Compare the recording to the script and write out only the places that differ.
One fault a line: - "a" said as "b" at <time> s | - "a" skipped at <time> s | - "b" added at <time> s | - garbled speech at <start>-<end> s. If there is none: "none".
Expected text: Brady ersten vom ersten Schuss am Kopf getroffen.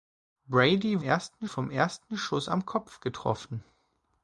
none